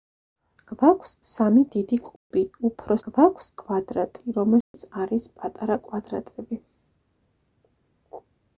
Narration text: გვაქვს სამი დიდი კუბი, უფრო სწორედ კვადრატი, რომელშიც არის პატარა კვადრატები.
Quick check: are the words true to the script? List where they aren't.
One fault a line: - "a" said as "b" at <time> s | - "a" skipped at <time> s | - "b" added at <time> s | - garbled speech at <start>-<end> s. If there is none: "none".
- "სწორედ" said as "გვაქვს" at 3.0 s